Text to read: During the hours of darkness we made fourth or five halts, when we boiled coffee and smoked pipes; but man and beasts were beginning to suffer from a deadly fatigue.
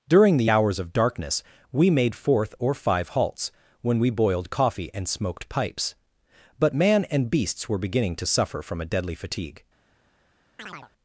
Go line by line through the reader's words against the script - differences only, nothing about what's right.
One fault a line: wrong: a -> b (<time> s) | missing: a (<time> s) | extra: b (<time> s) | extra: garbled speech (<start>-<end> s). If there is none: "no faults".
no faults